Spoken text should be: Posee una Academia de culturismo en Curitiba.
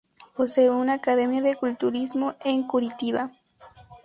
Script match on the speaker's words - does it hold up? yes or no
yes